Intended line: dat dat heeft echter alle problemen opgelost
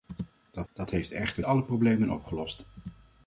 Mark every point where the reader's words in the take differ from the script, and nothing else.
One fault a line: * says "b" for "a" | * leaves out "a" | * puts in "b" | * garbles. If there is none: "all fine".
all fine